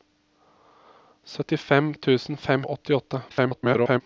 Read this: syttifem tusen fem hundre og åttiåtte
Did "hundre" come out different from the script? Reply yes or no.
yes